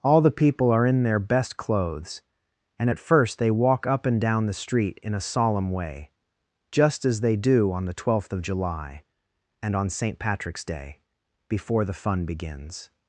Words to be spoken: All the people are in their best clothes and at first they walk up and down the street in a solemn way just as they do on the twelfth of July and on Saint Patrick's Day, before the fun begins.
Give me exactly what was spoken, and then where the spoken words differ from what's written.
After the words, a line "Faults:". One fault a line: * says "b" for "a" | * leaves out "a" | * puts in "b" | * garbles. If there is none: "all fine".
All the people are in their best clothes and at first they walk up and down the street in a solemn way just as they do on the twelfth of July and on Saint Patrick's Day, before the fun begins.
Faults:
all fine